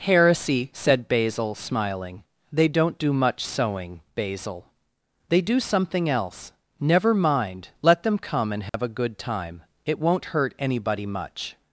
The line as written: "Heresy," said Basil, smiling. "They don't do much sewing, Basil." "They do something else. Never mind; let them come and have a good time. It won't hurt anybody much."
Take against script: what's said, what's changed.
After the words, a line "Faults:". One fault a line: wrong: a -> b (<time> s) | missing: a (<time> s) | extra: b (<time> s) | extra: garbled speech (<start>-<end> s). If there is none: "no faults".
"Heresy," said Basil, smiling. "They don't do much sewing, Basil." "They do something else. Never mind; let them come and have a good time. It won't hurt anybody much."
Faults:
no faults